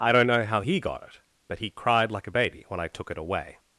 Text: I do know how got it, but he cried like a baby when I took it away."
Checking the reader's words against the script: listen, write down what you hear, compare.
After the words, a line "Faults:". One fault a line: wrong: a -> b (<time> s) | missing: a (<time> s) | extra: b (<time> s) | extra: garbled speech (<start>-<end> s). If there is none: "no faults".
I don't know how he got it, but he cried like a baby when I took it away."
Faults:
wrong: do -> don't (0.1 s)
extra: he (0.6 s)